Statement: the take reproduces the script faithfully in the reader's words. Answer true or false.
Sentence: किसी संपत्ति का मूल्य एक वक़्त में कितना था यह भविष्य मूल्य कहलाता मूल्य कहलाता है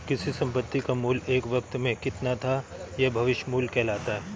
false